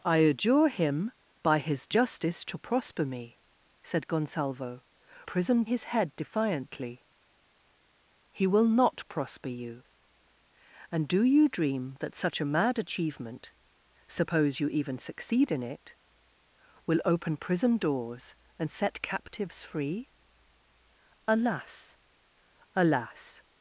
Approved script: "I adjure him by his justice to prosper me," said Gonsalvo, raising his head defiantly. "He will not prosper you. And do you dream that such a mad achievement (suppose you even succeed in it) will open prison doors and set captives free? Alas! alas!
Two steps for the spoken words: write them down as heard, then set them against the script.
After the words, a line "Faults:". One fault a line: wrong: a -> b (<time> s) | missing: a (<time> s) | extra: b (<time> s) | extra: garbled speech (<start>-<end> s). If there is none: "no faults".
"I adjure him by his justice to prosper me," said Gonsalvo, prison his head defiantly. "He will not prosper you. And do you dream that such a mad achievement (suppose you even succeed in it) will open prison doors and set captives free? Alas! alas!
Faults:
wrong: raising -> prison (5.2 s)